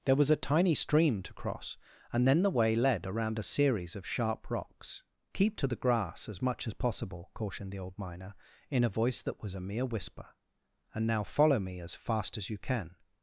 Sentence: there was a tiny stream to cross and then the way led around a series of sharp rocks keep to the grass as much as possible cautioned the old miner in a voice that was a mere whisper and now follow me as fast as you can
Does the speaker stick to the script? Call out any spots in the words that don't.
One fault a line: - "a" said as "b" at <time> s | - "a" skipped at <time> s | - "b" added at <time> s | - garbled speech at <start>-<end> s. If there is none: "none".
none